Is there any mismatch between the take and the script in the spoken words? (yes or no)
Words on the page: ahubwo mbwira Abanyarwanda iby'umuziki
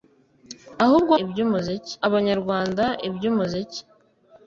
yes